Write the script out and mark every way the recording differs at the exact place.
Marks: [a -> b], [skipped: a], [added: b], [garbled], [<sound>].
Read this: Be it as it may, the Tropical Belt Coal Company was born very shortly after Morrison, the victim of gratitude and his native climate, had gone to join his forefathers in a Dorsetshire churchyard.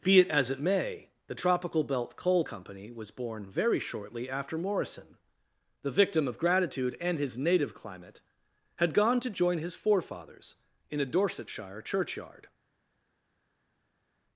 Be it as it may, the Tropical Belt Coal Company was born very shortly after Morrison, the victim of gratitude and his native climate, had gone to join his forefathers in a Dorsetshire churchyard.